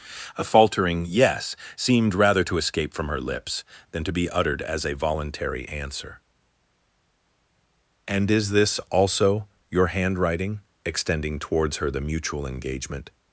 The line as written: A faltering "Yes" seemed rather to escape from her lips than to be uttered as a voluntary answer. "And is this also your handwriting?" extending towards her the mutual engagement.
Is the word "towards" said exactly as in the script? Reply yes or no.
yes